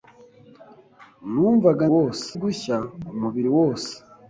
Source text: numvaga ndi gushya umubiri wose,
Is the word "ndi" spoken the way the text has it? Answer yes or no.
no